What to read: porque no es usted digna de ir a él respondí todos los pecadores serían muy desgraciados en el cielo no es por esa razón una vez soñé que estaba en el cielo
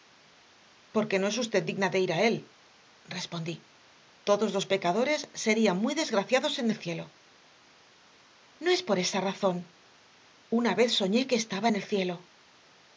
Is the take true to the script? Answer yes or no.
yes